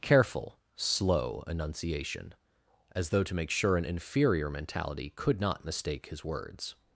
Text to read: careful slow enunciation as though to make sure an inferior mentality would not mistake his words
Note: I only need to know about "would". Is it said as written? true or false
false